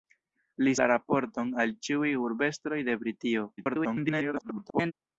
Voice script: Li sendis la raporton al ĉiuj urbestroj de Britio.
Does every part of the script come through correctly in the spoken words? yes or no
no